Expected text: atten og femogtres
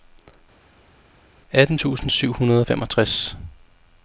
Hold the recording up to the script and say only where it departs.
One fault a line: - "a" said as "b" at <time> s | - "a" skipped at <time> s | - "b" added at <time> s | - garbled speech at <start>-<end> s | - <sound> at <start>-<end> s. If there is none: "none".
- "tusind syv hundrede" added at 1.7 s